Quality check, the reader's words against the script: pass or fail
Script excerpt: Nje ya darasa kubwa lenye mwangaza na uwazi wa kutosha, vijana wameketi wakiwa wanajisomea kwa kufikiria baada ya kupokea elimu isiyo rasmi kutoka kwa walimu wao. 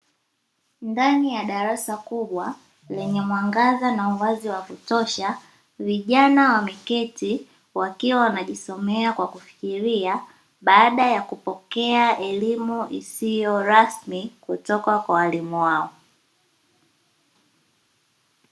fail